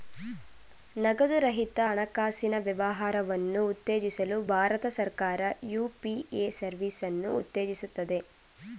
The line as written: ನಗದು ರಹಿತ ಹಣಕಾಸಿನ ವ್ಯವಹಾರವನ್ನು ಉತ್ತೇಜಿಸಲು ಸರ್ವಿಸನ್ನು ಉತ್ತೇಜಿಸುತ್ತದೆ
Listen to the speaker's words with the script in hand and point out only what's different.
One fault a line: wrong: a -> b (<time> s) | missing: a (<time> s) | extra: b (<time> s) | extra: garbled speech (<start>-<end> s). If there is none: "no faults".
extra: ಭಾರತ ಸರ್ಕಾರ ಯು.ಪಿ.ಎ (4.5 s)